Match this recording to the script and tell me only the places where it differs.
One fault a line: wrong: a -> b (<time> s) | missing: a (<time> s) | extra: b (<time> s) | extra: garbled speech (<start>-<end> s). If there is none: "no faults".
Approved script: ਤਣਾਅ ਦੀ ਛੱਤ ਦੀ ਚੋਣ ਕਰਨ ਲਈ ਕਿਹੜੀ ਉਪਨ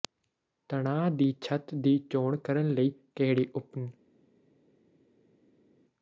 no faults